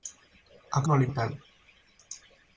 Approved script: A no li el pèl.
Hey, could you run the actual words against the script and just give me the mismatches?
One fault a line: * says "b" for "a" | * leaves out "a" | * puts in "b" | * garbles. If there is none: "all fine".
all fine